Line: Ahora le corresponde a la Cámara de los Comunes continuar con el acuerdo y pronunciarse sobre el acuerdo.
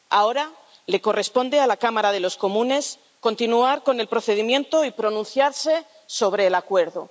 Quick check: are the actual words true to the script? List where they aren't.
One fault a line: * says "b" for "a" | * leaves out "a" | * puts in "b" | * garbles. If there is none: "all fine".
* says "procedimiento" for "acuerdo"